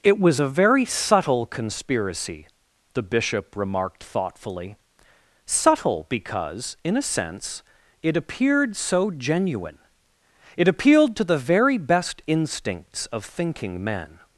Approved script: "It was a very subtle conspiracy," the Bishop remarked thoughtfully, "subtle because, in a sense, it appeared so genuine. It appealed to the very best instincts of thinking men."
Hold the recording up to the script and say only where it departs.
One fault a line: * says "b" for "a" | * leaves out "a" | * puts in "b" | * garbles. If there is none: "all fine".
all fine